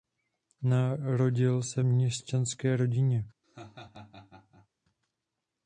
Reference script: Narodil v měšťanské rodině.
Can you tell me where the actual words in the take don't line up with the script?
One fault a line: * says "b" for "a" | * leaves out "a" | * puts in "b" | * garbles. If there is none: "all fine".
* puts in "se"